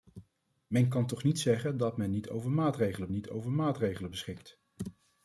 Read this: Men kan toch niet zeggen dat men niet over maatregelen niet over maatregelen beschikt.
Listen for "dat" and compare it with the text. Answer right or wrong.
right